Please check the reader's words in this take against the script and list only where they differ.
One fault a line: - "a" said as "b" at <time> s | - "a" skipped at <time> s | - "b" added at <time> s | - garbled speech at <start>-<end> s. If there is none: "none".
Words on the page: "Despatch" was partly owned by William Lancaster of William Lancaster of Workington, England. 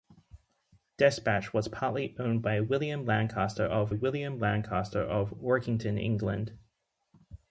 none